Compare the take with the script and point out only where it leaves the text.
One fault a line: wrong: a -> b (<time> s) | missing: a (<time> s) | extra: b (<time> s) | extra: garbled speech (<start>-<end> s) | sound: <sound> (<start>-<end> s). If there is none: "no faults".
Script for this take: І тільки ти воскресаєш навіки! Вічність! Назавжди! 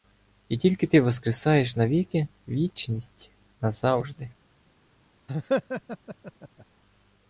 sound: laugh (5.3-6.7 s)